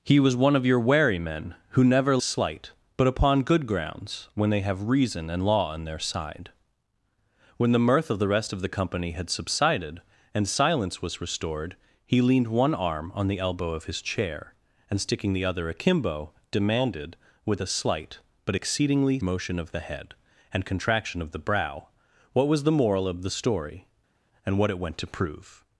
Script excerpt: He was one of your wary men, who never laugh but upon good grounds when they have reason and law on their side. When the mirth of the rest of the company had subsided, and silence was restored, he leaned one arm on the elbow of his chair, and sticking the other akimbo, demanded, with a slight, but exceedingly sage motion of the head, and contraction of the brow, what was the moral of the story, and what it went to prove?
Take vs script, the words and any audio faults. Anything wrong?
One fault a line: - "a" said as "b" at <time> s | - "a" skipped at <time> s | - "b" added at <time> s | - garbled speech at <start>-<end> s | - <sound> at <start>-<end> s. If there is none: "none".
- "laugh" said as "slight" at 2.2 s
- "sage" skipped at 19.2 s